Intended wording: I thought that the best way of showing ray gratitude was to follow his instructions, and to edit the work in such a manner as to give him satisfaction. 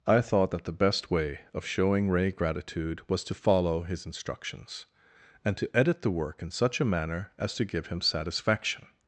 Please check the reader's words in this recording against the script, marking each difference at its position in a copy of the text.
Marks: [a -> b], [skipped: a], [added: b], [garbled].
I thought that the best way of showing ray gratitude was to follow his instructions, and to edit the work in such a manner as to give him satisfaction.